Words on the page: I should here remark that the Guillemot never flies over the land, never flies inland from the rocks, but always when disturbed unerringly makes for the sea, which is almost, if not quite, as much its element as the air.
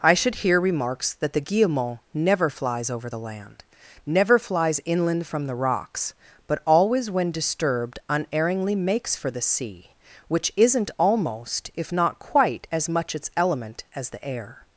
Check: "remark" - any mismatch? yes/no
yes